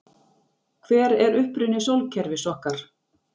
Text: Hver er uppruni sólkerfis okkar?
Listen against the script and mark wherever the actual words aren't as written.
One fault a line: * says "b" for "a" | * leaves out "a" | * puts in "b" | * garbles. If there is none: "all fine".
all fine